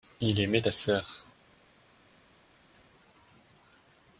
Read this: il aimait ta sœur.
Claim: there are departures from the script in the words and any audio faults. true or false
false